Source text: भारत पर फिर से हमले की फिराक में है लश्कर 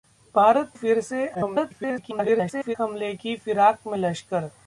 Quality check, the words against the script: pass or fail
fail